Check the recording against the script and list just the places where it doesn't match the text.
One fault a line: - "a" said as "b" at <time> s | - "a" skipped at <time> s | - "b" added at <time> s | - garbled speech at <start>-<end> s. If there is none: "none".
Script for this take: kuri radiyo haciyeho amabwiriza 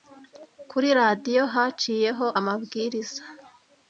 none